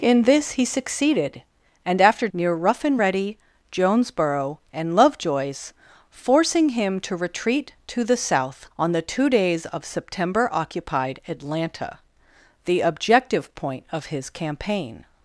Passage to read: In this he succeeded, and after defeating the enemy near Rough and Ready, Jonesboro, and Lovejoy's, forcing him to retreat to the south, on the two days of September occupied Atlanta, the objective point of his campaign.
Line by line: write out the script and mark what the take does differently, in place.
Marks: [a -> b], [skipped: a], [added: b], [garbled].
In this he succeeded, and after [skipped: defeating the enemy] near Rough and Ready, Jonesboro, and Lovejoy's, forcing him to retreat to the south, on the two days of September occupied Atlanta, the objective point of his campaign.